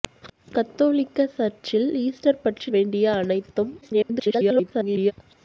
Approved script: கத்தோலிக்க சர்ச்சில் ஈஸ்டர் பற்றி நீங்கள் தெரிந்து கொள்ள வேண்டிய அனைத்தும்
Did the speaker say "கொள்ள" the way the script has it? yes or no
no